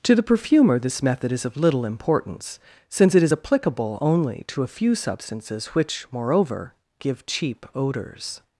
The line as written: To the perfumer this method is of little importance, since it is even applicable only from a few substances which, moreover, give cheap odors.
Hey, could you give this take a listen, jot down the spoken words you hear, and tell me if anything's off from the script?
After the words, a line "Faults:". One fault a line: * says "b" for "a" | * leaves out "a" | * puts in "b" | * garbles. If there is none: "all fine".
To the perfumer this method is of little importance, since it is applicable only to a few substances which, moreover, give cheap odors.
Faults:
* leaves out "even"
* says "to" for "from"